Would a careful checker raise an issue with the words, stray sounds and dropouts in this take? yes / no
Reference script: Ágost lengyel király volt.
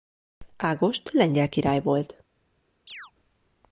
yes